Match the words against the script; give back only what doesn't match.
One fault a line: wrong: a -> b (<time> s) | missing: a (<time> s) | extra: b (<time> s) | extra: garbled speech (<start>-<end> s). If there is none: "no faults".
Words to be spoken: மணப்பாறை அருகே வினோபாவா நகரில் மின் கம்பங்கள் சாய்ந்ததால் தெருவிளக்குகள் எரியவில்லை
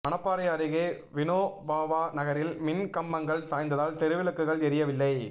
no faults